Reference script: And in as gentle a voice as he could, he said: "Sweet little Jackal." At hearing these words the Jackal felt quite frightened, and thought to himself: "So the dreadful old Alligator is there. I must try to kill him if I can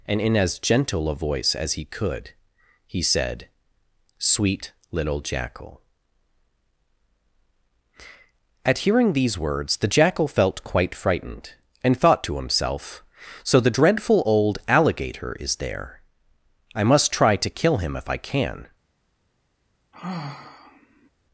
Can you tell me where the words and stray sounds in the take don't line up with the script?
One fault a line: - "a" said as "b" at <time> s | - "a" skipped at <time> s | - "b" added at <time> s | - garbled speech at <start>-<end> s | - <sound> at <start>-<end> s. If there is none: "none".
- sigh at 19.9-21.1 s